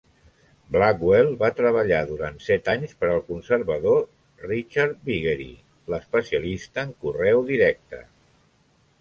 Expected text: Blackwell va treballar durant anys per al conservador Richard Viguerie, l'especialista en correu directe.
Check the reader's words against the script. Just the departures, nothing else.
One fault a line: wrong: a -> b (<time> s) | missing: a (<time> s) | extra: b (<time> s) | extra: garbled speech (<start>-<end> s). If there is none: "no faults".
extra: set (2.5 s)